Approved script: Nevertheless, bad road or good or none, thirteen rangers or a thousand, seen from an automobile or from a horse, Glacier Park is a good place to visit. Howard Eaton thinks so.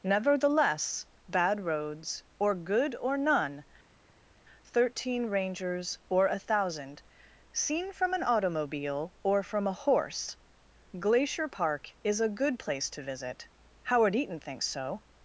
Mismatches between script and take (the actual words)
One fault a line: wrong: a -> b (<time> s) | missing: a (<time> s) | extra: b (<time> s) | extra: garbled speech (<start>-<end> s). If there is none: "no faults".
wrong: road -> roads (1.6 s)